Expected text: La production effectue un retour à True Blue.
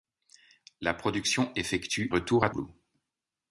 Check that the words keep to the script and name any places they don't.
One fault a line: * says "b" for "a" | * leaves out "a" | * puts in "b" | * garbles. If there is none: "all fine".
* leaves out "un"
* leaves out "True"